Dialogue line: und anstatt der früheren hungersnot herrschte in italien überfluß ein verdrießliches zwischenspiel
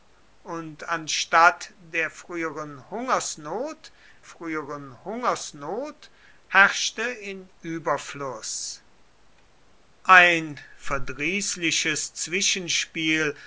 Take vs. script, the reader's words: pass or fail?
fail